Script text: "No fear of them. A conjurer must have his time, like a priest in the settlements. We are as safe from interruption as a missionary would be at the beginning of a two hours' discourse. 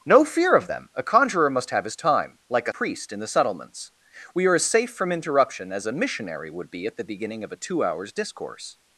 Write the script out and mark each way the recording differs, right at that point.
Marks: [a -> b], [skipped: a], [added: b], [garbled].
"No fear of them. A conjurer must have his time, like a priest in the settlements. We are as safe from interruption as a missionary would be at the beginning of a two hours' discourse.